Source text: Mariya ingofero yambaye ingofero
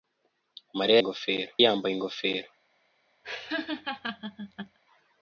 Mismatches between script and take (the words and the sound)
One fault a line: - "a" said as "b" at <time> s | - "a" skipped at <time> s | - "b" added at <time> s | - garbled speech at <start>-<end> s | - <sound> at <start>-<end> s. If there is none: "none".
- laugh at 3.2-4.8 s